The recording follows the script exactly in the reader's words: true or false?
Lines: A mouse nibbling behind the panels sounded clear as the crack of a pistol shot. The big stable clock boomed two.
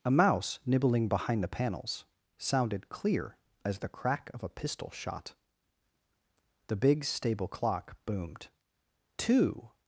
true